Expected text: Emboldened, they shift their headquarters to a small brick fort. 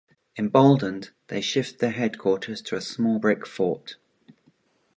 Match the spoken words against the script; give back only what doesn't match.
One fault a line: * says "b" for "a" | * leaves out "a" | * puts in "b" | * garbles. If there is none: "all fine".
all fine